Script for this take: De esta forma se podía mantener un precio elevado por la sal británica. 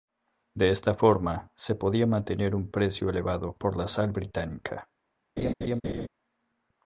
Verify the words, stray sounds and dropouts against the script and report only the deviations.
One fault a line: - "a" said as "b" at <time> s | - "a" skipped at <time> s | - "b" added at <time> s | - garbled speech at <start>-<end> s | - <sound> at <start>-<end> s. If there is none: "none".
- laugh at 5.4-6.1 s